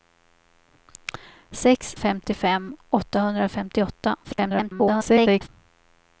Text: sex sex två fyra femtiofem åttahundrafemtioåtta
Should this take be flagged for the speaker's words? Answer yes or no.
yes